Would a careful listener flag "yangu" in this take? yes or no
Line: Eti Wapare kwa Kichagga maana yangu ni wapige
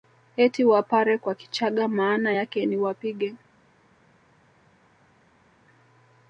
yes